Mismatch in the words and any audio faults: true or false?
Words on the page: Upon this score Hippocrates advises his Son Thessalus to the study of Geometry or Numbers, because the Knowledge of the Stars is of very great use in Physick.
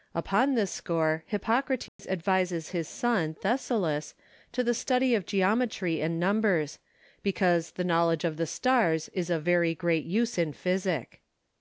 true